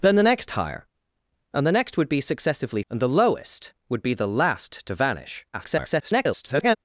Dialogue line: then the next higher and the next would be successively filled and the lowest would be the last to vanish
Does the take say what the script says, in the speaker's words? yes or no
no